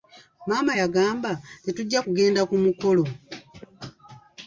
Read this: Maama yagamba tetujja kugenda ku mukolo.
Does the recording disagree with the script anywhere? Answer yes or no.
no